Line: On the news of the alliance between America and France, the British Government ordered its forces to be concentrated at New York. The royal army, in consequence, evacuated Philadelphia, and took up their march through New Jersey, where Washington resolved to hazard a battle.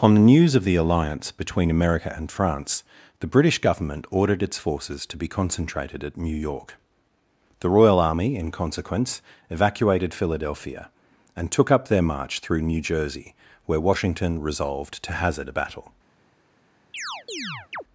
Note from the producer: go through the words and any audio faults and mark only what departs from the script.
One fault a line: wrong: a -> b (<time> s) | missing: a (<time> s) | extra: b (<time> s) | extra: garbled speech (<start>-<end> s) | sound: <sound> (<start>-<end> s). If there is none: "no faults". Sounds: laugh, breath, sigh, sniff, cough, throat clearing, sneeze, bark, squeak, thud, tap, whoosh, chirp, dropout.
sound: chirp (16.9-17.8 s)